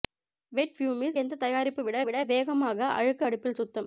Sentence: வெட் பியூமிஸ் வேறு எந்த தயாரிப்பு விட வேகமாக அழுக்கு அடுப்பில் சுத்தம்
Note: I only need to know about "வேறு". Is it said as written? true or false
false